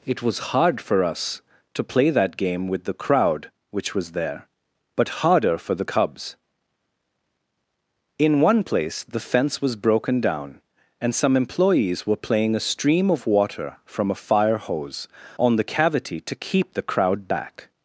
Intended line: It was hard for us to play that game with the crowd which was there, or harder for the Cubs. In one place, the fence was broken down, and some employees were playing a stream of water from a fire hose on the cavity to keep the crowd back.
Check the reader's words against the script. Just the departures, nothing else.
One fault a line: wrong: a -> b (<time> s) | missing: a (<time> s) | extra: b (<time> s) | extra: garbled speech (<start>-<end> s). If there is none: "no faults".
wrong: or -> but (5.0 s)